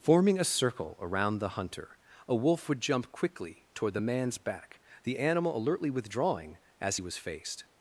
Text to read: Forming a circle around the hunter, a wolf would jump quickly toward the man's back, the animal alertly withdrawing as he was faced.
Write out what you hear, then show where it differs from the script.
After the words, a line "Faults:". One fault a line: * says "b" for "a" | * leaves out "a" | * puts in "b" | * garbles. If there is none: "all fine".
Forming a circle around the hunter, a wolf would jump quickly toward the man's back, the animal alertly withdrawing as he was faced.
Faults:
all fine